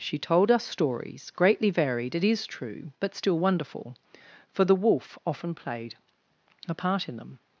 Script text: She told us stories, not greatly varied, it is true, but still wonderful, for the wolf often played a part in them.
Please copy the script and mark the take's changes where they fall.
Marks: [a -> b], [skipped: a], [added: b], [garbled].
She told us stories, [skipped: not] greatly varied, it is true, but still wonderful, for the wolf often played a part in them.